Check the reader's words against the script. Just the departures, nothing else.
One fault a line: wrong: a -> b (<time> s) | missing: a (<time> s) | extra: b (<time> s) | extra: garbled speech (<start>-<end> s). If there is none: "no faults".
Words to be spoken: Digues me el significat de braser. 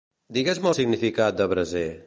no faults